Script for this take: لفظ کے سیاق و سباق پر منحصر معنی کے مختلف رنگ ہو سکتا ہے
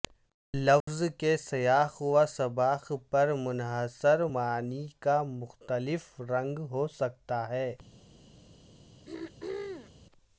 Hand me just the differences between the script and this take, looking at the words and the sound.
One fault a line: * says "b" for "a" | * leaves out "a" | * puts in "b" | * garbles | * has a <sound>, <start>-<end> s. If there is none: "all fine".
* has a dropout, 0.8-0.9 s
* says "کا" for "کے"
* has a throat clearing, 9.1-9.9 s